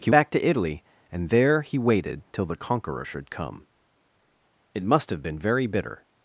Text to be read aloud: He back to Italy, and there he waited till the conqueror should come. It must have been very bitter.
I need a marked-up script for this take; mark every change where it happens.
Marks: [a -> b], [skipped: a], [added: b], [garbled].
He back to Italy, and there he waited till the conqueror should come. It must have been very bitter.